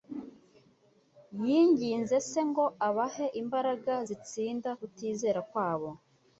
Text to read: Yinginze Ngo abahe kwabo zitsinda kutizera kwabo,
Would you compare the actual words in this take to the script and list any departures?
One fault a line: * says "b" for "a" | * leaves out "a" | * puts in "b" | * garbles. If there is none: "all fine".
* puts in "Se"
* says "imbaraga" for "kwabo"